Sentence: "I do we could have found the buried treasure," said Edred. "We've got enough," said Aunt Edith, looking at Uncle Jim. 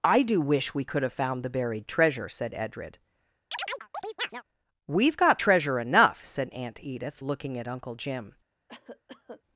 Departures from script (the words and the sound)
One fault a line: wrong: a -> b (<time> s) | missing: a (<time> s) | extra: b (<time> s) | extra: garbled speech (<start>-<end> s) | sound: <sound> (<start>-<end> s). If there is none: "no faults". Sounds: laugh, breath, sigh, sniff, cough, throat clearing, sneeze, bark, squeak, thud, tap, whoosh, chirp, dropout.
extra: wish (0.4 s)
sound: chirp (3.5-4.4 s)
extra: treasure (5.4 s)
sound: cough (8.7-9.4 s)